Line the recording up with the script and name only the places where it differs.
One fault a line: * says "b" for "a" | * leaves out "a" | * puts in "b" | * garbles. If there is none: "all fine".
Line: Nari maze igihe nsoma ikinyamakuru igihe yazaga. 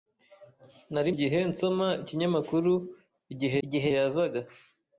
* leaves out "maze"
* puts in "igihe"